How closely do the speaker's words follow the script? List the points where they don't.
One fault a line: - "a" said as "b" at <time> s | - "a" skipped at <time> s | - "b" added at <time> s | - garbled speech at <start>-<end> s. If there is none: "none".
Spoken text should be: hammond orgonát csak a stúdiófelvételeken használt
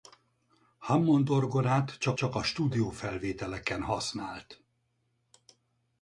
- "csak" added at 2.1 s